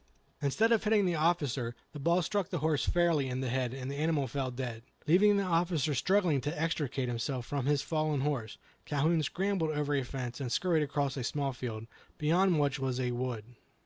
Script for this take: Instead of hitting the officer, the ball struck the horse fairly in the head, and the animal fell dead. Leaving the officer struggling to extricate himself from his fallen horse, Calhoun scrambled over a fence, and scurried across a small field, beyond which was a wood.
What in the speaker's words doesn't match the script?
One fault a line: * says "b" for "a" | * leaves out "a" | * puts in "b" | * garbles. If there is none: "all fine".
all fine